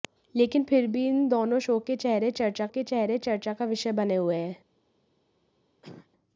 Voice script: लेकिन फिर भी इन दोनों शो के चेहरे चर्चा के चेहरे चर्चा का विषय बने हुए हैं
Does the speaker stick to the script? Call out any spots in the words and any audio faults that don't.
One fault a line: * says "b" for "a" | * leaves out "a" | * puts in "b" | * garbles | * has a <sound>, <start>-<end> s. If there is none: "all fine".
* has a cough, 5.8-6.1 s